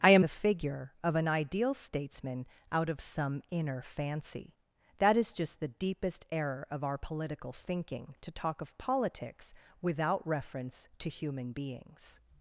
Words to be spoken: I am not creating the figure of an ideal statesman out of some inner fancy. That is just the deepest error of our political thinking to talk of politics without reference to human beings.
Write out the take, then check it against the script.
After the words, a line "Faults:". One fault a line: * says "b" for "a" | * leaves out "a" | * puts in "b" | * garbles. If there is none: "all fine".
I am the figure of an ideal statesman out of some inner fancy. That is just the deepest error of our political thinking to talk of politics without reference to human beings.
Faults:
* leaves out "not creating"